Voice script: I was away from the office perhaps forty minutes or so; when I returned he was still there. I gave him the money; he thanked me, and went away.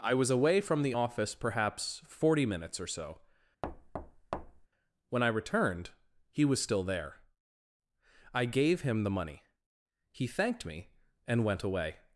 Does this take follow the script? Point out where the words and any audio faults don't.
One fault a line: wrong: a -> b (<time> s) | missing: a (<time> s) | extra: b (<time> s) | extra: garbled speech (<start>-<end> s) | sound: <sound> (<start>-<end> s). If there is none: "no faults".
sound: thud (3.6-4.7 s)